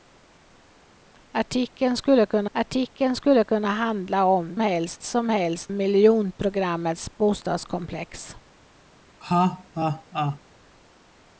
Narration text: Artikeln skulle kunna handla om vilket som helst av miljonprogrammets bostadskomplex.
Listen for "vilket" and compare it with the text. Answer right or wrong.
wrong